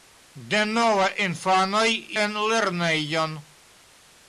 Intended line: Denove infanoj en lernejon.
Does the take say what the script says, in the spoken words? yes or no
yes